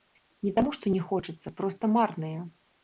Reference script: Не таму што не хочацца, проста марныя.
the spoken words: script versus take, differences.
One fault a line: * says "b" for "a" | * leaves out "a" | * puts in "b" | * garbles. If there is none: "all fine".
all fine